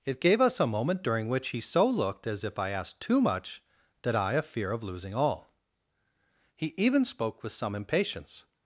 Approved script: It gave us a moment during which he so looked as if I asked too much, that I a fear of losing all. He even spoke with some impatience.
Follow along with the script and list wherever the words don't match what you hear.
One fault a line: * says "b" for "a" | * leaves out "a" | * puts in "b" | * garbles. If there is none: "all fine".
all fine